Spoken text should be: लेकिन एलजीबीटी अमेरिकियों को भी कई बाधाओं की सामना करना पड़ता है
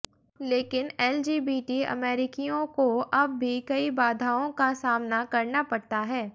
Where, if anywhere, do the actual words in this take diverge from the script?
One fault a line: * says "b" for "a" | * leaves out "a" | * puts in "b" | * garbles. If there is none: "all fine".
* puts in "अब"
* says "का" for "की"